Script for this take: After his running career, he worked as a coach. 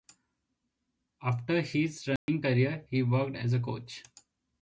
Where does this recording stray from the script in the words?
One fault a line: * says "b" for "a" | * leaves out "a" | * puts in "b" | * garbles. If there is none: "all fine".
all fine